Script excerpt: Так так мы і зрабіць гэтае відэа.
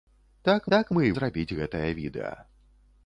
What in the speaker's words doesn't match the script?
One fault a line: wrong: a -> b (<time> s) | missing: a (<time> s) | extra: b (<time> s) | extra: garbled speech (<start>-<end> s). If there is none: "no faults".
no faults